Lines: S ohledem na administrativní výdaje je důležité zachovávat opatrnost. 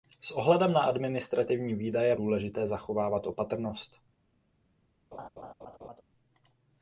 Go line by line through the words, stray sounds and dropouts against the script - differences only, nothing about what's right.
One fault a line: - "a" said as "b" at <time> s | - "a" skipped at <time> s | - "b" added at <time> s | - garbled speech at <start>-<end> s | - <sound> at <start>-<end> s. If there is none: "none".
- laugh at 5.1-6.0 s